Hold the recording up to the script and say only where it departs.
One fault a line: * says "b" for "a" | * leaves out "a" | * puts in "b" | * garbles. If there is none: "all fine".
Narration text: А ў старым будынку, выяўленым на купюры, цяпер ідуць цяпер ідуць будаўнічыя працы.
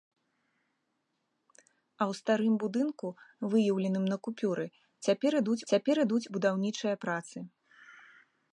all fine